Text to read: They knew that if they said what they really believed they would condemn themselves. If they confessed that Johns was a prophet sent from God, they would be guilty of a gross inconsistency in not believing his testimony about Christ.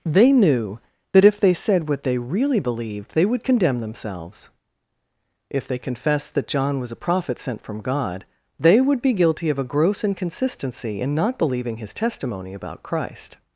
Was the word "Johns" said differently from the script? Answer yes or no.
yes